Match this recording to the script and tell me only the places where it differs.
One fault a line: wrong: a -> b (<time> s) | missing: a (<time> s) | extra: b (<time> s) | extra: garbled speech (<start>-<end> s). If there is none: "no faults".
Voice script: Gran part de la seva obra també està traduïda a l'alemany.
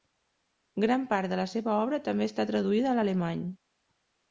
no faults